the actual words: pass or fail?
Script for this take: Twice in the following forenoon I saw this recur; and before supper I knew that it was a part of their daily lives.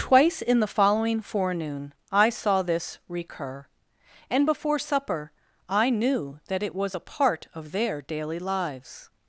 pass